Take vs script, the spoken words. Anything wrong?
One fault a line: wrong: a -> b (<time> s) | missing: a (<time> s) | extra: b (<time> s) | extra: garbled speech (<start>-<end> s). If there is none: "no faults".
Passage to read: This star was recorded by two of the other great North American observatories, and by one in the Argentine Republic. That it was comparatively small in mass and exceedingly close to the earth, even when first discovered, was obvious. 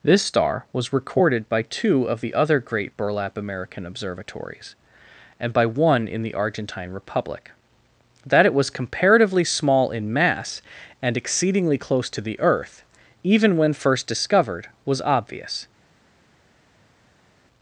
wrong: North -> Burlap (3.0 s)